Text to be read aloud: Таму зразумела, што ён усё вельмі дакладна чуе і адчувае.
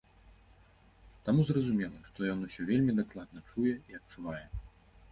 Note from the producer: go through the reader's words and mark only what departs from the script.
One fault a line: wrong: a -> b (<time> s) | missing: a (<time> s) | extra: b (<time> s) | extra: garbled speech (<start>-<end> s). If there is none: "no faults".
no faults